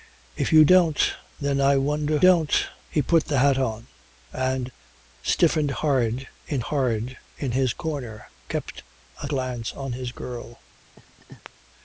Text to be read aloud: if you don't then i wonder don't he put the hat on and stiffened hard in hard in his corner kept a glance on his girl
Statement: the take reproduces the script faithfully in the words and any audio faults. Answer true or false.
false